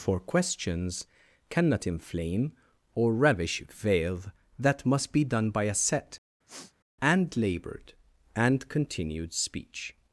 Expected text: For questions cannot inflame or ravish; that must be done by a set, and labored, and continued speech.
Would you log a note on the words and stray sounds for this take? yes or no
yes